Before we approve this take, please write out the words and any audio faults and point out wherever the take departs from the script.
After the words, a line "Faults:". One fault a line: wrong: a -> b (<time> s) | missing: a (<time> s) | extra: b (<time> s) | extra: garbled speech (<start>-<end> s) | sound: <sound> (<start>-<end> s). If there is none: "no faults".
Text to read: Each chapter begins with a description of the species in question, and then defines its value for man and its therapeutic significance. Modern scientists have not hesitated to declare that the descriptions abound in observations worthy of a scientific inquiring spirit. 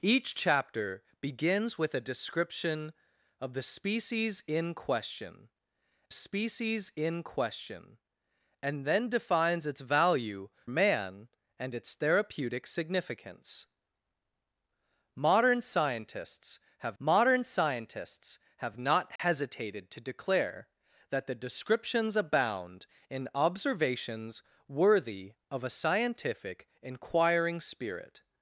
Each chapter begins with a description of the species in question species in question, and then defines its value man and its therapeutic significance. Modern scientists have modern scientists have not hesitated to declare that the descriptions abound in observations worthy of a scientific inquiring spirit.
Faults:
extra: species in question (6.1 s)
missing: for (10.5 s)
extra: modern scientists have (17.0 s)
sound: dropout (19.2-19.2 s)